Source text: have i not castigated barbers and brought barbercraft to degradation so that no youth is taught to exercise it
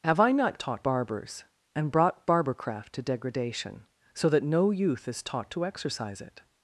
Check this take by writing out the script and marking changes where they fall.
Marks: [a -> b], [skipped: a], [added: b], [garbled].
have i not [castigated -> taught] barbers and brought barbercraft to degradation so that no youth is taught to exercise it